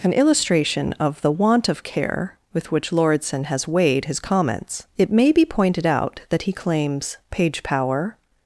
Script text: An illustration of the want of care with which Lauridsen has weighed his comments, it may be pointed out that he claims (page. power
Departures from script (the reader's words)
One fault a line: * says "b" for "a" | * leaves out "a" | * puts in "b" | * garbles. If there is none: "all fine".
all fine